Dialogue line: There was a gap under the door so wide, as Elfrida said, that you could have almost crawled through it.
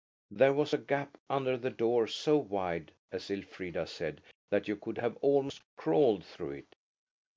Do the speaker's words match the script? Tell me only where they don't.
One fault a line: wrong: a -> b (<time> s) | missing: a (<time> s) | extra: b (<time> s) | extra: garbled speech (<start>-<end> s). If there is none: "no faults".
no faults